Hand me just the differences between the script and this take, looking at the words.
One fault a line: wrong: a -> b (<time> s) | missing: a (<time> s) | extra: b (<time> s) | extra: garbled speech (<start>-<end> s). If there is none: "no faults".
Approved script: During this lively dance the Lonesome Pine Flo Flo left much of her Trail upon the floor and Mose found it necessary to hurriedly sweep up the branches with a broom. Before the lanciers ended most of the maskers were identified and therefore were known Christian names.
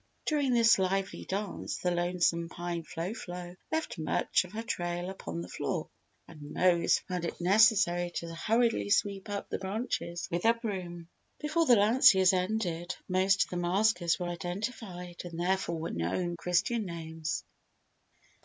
no faults